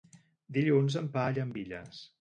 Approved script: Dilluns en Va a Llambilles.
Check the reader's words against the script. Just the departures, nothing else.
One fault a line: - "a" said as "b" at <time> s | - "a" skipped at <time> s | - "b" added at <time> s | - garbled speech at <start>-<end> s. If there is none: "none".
none